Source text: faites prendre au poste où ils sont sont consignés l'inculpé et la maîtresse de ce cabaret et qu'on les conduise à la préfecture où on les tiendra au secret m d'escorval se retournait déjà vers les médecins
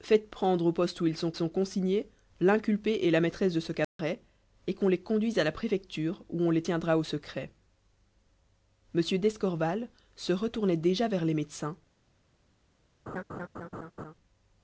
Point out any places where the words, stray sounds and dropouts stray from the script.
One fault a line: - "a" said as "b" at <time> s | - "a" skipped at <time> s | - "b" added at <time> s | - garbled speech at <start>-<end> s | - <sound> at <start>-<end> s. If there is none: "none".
- dropout at 3.8-4.0 s
- laugh at 13.1-14.1 s